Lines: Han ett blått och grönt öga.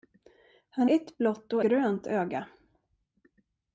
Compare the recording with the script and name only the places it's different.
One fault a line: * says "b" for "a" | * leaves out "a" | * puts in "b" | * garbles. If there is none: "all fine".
all fine